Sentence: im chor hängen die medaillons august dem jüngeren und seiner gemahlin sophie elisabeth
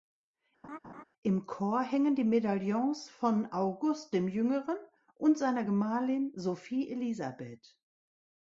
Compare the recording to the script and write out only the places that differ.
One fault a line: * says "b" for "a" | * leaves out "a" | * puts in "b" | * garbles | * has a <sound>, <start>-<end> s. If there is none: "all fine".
* has a laugh, 0.6-1.0 s
* puts in "von"